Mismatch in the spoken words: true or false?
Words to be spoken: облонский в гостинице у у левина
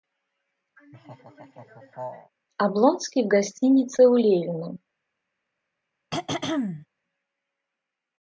true